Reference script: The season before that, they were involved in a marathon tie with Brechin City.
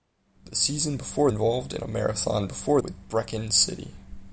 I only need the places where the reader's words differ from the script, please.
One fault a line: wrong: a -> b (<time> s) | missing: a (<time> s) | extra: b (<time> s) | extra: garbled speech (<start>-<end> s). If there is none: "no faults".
missing: that they were (1.3 s)
wrong: tie -> before (2.5 s)